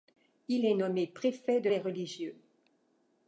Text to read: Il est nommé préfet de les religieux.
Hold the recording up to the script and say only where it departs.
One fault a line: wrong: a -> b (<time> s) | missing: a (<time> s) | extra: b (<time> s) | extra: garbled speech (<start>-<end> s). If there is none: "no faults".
no faults